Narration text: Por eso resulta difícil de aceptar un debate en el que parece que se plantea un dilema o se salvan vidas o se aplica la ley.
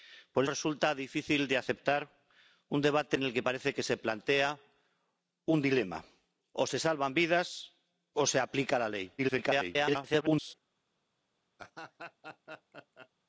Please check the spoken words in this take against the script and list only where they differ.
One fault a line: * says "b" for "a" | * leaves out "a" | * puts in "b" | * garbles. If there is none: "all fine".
* leaves out "eso"
* garbles